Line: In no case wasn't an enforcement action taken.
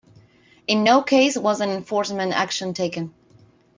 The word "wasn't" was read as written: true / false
false